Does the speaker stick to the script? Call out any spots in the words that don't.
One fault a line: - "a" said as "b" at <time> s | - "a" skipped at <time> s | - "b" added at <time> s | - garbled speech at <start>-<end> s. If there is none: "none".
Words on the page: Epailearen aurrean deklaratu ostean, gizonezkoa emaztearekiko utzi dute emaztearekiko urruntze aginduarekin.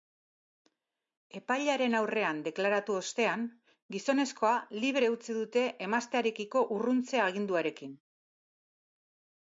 - "emaztearekiko" said as "libre" at 4.8 s